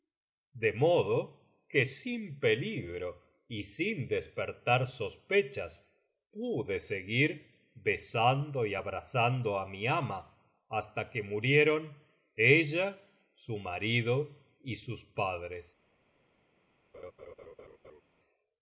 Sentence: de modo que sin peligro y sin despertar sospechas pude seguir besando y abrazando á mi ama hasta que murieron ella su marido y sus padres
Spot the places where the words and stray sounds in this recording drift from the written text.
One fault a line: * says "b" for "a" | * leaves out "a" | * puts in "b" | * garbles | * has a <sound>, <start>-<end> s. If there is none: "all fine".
* has a laugh, 16.9-18.0 s